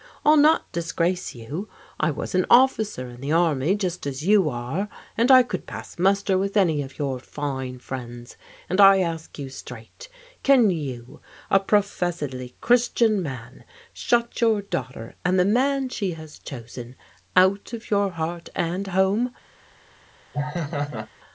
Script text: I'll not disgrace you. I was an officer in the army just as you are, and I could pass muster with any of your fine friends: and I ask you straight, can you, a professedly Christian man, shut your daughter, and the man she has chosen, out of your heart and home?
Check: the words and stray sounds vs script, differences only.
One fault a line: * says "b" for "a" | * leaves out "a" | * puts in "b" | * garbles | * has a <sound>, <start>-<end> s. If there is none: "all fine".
* has a laugh, 20.3-21.1 s